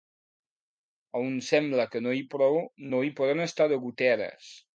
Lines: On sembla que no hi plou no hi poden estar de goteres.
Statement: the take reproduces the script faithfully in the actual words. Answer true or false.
true